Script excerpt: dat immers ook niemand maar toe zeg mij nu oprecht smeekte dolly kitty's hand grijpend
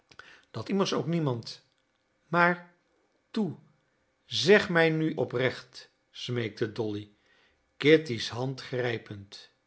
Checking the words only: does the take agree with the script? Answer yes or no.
yes